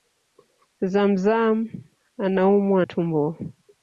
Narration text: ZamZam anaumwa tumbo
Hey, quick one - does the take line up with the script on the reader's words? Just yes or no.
yes